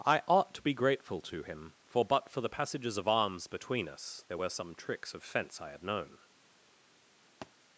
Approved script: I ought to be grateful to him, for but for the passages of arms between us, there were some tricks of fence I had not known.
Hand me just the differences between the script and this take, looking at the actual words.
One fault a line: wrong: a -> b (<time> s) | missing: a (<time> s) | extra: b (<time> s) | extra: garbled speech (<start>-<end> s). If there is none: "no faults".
missing: not (5.8 s)